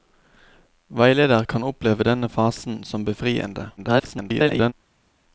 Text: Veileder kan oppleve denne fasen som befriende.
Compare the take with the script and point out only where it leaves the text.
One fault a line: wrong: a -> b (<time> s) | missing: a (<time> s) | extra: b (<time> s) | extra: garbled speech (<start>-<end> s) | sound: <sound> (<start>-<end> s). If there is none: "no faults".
extra: garbled speech (3.8-4.7 s)